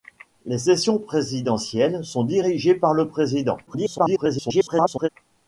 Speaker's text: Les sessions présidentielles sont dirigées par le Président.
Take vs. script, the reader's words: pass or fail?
fail